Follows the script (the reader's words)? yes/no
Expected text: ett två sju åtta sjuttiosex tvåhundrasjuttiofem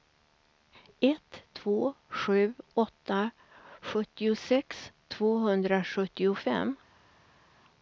yes